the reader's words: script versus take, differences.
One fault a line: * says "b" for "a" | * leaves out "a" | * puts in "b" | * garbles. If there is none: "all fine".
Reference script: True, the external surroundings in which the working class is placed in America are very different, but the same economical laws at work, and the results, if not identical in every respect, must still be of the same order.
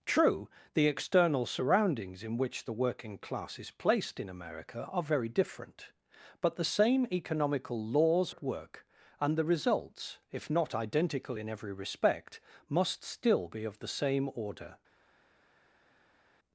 all fine